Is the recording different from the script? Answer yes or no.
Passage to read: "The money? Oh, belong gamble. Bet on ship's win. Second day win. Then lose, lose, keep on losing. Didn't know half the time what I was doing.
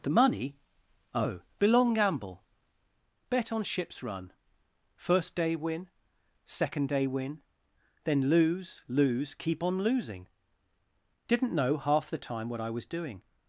yes